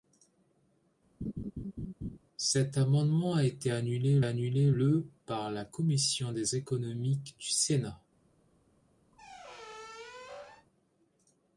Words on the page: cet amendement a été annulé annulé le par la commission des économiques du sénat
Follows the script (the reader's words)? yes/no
yes